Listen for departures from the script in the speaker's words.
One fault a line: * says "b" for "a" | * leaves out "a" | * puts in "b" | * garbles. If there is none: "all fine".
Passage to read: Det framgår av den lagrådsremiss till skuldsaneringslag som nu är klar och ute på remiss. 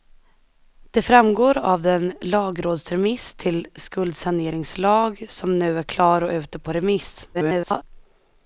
* garbles